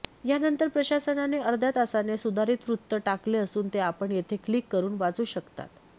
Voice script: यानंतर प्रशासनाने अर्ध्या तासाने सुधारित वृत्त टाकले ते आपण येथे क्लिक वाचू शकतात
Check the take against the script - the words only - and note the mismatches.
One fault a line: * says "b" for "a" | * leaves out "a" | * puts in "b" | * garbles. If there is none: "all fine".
* puts in "असून"
* puts in "करून"